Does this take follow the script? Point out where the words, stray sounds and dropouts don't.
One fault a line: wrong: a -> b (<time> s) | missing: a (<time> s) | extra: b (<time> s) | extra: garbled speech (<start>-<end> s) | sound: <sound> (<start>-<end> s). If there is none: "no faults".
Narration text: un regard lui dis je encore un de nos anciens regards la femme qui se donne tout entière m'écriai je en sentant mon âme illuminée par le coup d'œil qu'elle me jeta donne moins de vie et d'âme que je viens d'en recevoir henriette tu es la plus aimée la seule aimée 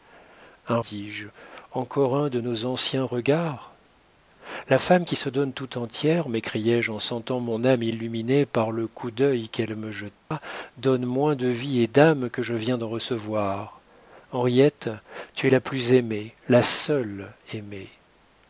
missing: regard lui (0.8 s)
sound: dropout (10.2-10.3 s)